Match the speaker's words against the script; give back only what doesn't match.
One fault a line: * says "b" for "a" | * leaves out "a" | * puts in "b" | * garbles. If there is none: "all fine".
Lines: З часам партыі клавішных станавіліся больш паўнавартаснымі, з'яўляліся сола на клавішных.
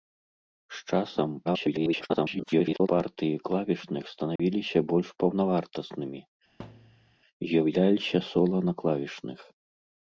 * garbles